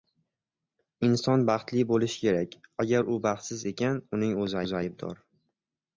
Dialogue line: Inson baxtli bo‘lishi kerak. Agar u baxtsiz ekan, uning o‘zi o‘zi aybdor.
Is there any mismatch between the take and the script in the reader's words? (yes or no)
no